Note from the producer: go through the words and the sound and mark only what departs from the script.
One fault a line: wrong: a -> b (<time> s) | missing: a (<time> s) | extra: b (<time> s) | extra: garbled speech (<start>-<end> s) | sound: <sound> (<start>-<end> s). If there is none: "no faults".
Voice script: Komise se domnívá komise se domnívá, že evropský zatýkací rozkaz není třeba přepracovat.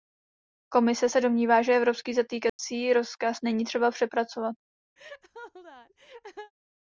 missing: komise se domnívá (1.6 s)
sound: dropout (2.5-2.6 s)
sound: laugh (5.0-6.5 s)